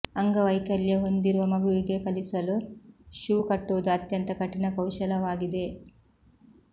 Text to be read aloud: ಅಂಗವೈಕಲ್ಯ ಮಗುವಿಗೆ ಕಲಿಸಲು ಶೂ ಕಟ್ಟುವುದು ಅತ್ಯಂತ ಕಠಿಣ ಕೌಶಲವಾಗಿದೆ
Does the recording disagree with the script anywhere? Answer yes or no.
yes